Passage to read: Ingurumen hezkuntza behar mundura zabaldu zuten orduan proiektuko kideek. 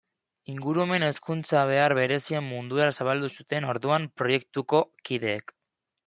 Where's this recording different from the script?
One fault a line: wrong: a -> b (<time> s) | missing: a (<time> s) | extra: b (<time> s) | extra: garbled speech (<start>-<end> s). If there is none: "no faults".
extra: berezien (2.0 s)